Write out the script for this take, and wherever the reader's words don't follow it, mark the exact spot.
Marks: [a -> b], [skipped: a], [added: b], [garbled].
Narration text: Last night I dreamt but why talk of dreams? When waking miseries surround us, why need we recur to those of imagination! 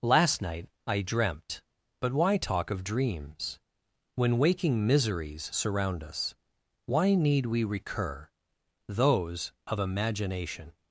Last night I dreamt but why talk of dreams? When waking miseries surround us, why need we recur [skipped: to] those of imagination!